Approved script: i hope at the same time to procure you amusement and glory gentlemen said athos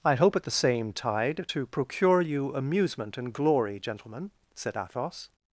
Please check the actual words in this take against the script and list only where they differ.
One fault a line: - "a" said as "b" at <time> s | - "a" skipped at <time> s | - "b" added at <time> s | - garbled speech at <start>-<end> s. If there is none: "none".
- "time" said as "tide" at 0.9 s